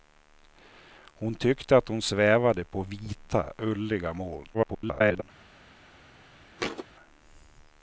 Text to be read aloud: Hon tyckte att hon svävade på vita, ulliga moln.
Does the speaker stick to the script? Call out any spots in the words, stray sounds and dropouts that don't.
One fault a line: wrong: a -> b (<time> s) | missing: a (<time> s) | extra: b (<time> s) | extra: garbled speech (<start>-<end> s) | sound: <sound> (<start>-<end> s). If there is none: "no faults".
extra: garbled speech (4.5-5.2 s)
sound: thud (6.6-6.9 s)